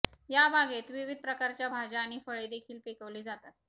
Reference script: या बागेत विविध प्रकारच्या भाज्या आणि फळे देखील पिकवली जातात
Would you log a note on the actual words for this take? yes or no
no